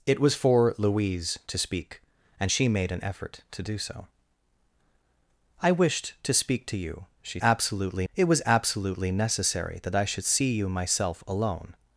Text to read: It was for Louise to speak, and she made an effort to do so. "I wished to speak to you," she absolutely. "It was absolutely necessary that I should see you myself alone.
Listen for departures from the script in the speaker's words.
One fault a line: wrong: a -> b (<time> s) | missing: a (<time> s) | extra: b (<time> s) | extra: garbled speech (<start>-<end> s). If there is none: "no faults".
no faults